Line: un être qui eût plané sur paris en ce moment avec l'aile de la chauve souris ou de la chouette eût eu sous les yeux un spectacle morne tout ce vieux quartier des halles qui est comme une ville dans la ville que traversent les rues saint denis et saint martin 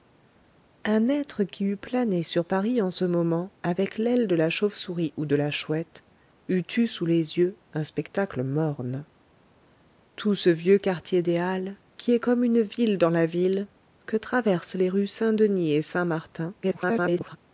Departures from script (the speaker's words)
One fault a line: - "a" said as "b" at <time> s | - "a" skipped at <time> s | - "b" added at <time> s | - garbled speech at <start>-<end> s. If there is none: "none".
- garbled speech at 16.6-17.4 s